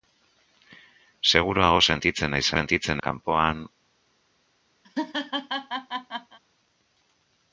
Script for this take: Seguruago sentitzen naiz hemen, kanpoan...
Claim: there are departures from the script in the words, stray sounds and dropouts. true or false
true